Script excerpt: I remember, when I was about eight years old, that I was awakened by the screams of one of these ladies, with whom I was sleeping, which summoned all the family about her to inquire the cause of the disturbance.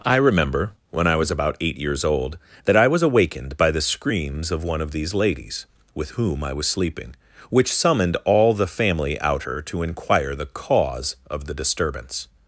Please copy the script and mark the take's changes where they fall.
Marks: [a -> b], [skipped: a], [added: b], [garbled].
I remember, when I was about eight years old, that I was awakened by the screams of one of these ladies, with whom I was sleeping, which summoned all the family [about -> out] her to inquire the cause of the disturbance.